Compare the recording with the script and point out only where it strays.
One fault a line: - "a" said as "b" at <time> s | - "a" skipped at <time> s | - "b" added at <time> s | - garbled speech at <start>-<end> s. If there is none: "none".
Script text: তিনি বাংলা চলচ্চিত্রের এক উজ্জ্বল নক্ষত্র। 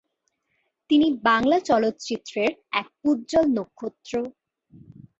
none